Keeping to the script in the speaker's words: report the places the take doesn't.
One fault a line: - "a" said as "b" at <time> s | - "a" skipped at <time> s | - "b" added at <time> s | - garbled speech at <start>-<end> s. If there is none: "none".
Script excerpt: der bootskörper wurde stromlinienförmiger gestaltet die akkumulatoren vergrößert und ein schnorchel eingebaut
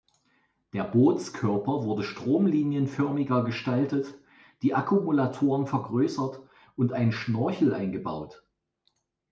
none